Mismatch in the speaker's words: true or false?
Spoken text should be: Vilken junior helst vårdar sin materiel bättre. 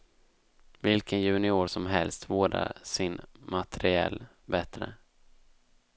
true